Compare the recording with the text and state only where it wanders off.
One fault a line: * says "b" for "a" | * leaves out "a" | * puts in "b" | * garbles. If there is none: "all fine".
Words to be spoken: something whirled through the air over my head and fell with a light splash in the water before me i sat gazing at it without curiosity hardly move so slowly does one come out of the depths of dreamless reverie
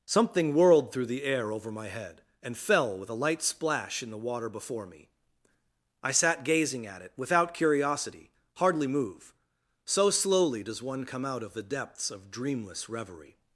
all fine